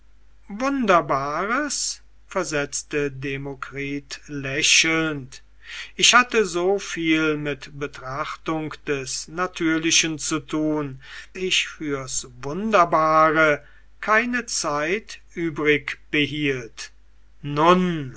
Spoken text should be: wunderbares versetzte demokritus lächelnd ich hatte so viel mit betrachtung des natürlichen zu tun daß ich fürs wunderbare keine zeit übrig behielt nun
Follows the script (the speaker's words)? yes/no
no